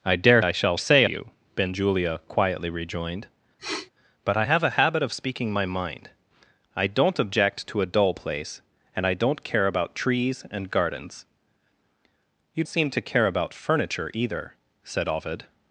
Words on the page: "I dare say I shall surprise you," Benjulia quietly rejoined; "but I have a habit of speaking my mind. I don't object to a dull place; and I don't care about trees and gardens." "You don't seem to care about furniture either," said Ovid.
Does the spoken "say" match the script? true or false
false